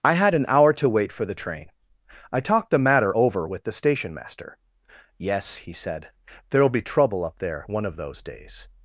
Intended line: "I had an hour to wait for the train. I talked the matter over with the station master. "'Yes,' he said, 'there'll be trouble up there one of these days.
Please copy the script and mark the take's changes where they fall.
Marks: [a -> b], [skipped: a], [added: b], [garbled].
"I had an hour to wait for the train. I talked the matter over with the station master. "'Yes,' he said, 'there'll be trouble up there one of [these -> those] days.